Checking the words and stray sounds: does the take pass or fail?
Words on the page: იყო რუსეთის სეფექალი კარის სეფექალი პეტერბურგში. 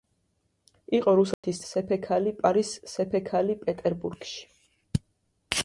fail